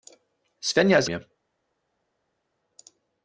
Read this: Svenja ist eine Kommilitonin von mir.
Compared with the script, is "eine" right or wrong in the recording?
wrong